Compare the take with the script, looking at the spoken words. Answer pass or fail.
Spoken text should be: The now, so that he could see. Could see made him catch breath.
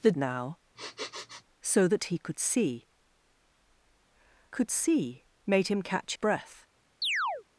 pass